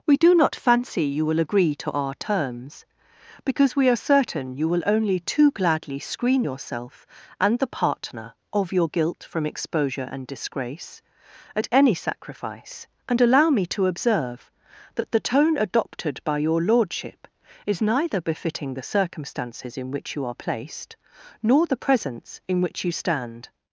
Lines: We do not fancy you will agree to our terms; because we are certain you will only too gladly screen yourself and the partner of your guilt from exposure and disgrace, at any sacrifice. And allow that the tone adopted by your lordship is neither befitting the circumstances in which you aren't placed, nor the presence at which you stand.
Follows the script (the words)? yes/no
no